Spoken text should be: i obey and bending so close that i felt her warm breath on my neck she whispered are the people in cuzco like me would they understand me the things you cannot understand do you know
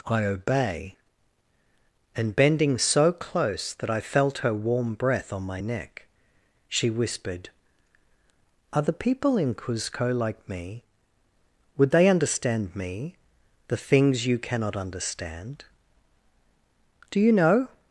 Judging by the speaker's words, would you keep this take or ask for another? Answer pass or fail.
pass